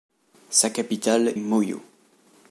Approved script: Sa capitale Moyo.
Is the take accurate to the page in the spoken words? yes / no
yes